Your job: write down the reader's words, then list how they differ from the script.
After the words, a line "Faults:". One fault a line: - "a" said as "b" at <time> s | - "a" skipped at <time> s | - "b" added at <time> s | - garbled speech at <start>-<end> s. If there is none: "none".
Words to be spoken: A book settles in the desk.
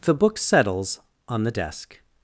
The book settles on the desk.
Faults:
- "A" said as "The" at 0.0 s
- "in" said as "on" at 1.3 s